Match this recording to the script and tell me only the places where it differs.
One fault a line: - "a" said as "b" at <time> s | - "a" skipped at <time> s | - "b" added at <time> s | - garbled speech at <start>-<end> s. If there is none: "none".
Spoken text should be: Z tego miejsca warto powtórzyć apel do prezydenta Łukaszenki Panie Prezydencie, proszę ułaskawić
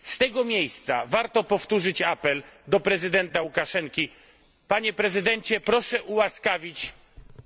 none